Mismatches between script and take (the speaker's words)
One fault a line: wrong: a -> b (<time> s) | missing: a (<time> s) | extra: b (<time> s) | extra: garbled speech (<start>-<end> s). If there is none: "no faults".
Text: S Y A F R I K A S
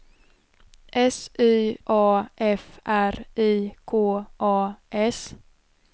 no faults